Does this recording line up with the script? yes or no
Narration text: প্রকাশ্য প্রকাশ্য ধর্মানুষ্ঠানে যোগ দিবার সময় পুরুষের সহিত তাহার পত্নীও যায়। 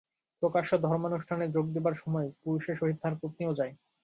no